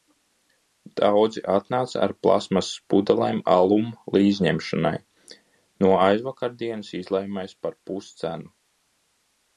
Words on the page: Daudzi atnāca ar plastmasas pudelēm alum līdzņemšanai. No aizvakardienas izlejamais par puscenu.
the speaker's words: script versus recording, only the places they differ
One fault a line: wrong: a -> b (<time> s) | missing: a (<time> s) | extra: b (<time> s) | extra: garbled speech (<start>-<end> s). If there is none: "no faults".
no faults